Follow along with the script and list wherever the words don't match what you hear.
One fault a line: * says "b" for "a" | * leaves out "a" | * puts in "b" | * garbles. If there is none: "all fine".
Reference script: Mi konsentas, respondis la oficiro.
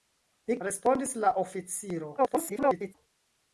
* leaves out "konsentas"
* garbles